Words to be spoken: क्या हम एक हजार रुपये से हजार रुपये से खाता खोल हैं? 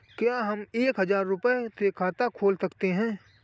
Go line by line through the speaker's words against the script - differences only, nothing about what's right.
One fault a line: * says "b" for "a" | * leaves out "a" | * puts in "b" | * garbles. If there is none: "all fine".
* leaves out "हजार रुपये से"
* puts in "सकते"